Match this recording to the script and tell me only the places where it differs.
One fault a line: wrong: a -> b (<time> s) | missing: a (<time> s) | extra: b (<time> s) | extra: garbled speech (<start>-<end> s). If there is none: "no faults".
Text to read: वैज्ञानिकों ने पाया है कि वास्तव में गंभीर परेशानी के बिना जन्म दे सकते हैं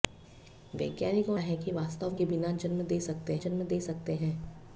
missing: ने पाया (1.4 s)
wrong: में गंभीर परेशानी के बिना -> के बिना जन्म दे सकते (2.1 s)